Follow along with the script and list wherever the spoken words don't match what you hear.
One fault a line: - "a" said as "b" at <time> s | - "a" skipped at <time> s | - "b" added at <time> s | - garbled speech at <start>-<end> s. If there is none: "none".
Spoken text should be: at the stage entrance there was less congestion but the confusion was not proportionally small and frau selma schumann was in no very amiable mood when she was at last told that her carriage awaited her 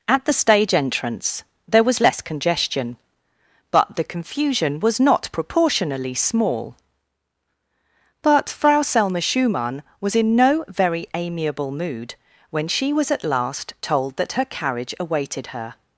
- "and" said as "but" at 8.2 s